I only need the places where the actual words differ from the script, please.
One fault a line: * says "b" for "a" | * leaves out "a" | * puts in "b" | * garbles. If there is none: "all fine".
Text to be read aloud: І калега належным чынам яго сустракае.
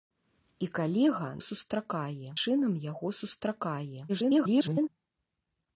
* says "сустракае" for "належным"
* garbles